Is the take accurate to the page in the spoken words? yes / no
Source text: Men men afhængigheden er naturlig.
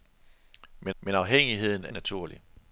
yes